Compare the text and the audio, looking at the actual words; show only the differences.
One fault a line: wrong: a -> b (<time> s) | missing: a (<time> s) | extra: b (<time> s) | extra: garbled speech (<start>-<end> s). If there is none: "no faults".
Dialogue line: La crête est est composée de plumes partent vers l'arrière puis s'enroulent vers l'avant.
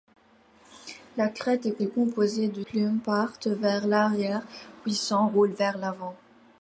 no faults